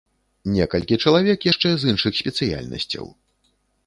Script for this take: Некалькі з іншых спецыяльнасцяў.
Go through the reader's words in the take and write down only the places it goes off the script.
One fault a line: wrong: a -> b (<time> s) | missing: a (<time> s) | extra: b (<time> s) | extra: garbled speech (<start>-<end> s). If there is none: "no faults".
extra: чалавек яшчэ (1.0 s)